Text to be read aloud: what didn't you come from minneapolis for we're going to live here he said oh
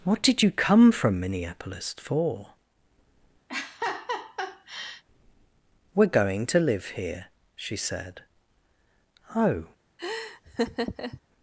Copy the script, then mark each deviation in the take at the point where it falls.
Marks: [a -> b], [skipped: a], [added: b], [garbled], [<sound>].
what [didn't -> did] you come from minneapolis for [laugh] we're going to live here [he -> she] said oh [laugh]